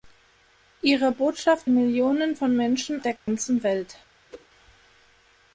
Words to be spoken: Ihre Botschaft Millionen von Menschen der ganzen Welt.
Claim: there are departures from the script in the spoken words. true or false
false